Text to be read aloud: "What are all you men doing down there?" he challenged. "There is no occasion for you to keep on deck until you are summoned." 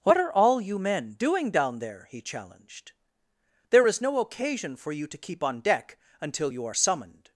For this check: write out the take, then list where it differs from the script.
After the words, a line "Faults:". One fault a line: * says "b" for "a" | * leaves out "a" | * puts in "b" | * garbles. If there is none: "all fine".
"What are all you men doing down there?" he challenged. "There is no occasion for you to keep on deck until you are summoned."
Faults:
all fine